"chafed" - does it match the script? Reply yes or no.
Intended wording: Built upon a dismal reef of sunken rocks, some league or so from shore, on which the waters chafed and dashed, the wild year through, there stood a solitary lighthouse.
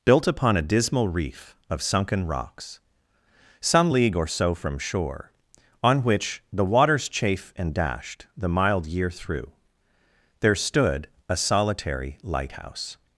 no